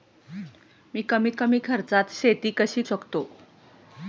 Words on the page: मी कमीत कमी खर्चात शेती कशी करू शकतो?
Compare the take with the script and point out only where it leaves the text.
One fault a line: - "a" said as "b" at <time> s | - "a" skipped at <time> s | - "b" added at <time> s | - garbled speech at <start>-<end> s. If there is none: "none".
- "करू" skipped at 2.8 s